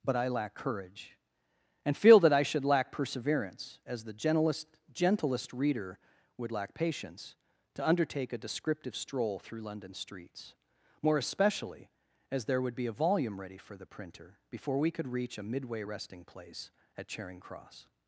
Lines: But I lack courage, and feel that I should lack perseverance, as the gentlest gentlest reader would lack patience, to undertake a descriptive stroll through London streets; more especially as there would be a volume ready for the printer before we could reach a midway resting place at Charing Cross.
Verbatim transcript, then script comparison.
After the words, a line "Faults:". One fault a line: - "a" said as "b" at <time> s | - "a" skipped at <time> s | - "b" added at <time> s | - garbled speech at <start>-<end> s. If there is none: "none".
But I lack courage, and feel that I should lack perseverance, as the gentlest gentlest reader would lack patience, to undertake a descriptive stroll through London streets; more especially as there would be a volume ready for the printer before we could reach a midway resting place at Charing Cross.
Faults:
none